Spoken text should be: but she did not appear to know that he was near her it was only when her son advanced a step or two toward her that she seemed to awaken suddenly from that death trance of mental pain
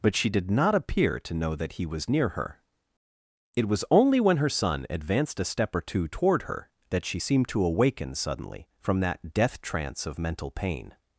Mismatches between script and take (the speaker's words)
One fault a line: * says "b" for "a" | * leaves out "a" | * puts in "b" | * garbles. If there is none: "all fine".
all fine